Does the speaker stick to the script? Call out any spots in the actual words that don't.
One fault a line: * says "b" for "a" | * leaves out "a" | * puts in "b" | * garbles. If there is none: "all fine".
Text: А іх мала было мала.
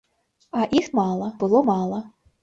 all fine